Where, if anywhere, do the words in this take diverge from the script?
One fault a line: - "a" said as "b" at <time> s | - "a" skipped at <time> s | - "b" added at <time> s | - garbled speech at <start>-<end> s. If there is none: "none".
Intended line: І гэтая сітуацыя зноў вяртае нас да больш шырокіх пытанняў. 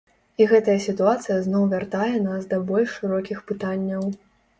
none